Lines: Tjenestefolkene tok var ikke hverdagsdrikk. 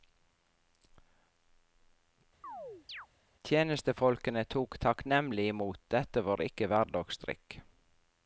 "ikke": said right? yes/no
yes